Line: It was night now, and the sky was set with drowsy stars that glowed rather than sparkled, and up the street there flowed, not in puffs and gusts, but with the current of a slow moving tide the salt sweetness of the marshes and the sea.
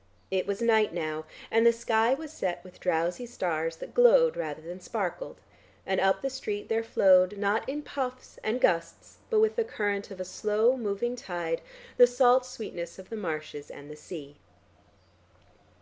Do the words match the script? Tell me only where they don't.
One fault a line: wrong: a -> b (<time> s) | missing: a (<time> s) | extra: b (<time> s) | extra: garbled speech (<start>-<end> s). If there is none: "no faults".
no faults